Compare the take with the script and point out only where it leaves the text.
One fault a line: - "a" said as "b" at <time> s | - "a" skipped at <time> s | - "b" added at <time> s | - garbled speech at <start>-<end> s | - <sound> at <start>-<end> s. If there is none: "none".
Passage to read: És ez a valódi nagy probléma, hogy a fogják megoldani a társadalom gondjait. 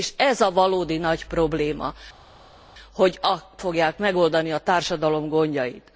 none